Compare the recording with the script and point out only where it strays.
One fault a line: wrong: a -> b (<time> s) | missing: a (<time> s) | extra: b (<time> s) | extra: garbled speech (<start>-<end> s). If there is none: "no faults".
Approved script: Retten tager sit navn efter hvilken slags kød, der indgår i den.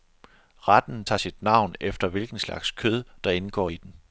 no faults